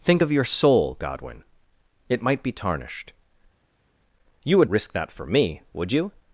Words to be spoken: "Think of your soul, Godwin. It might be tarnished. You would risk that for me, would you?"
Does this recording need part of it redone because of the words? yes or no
no